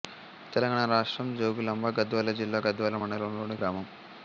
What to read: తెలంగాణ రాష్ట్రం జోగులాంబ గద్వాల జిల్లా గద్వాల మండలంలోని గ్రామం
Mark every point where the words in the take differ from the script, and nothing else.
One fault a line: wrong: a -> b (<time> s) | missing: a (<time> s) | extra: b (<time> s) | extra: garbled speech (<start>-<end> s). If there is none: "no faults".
no faults